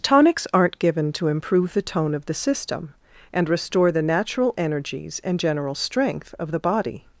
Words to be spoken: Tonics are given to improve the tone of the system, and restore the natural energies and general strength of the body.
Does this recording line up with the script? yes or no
no